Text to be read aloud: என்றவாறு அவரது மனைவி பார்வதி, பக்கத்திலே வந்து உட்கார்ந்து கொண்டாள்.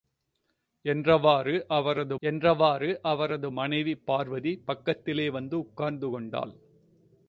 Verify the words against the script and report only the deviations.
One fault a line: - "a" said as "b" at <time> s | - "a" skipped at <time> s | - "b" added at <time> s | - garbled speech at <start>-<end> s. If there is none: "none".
- "என்றவாறு அவரது" added at 2.2 s